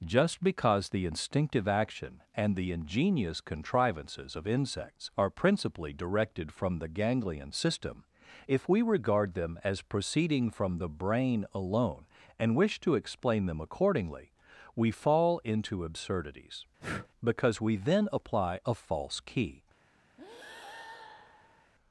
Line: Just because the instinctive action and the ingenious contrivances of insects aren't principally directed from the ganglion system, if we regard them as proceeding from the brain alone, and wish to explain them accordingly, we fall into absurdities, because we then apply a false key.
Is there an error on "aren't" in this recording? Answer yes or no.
yes